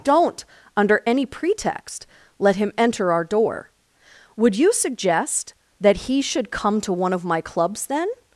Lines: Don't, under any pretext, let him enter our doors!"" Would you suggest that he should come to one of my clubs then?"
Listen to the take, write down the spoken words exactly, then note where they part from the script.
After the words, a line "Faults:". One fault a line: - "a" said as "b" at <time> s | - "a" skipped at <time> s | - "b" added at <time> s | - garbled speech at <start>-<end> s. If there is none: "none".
Don't, under any pretext, let him enter our door!"" Would you suggest that he should come to one of my clubs then?"
Faults:
- "doors" said as "door" at 3.2 s